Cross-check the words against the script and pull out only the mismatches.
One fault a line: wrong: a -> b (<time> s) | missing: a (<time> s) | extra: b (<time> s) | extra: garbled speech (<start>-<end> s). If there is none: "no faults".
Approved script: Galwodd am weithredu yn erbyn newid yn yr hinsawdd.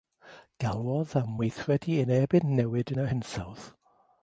no faults